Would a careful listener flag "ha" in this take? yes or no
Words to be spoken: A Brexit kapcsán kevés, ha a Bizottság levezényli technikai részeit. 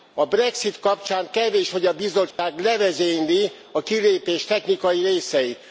yes